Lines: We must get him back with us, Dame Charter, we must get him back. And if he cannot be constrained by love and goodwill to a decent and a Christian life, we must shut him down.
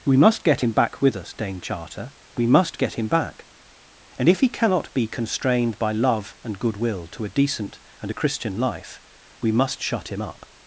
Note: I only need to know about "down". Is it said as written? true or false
false